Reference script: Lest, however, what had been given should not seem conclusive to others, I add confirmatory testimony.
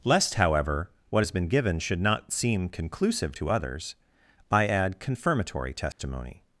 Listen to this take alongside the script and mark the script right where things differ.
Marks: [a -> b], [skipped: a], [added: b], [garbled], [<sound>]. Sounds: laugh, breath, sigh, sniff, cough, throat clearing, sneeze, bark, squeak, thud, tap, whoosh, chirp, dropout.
Lest, however, what [had -> has] been given should not seem conclusive to others, I add confirmatory testimony. [dropout]